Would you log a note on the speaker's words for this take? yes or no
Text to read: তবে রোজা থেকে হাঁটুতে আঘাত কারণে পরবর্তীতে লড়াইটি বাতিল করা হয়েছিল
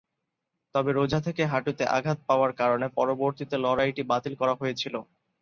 yes